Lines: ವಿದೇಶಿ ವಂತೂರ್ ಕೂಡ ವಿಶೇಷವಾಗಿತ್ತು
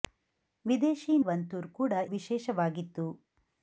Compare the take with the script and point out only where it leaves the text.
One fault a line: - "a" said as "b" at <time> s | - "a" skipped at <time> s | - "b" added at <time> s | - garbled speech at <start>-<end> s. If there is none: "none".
none